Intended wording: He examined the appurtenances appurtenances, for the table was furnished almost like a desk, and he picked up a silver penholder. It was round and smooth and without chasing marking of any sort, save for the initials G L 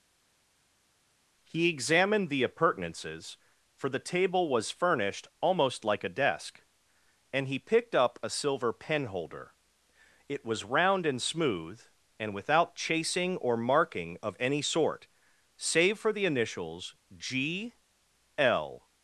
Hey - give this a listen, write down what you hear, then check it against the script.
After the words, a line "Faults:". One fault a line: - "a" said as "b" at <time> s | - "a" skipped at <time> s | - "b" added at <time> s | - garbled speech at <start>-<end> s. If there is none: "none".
He examined the appurtenances, for the table was furnished almost like a desk, and he picked up a silver penholder. It was round and smooth and without chasing or marking of any sort, save for the initials G L
Faults:
- "appurtenances" skipped at 3.4 s
- "or" added at 13.4 s